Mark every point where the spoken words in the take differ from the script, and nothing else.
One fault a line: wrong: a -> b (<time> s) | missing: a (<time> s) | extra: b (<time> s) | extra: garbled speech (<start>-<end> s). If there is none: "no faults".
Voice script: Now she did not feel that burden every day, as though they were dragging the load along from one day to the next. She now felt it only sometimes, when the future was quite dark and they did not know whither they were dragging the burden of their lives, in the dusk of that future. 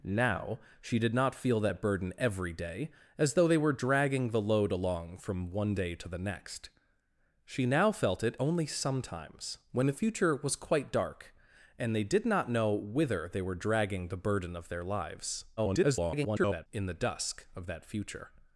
extra: garbled speech (15.6-16.7 s)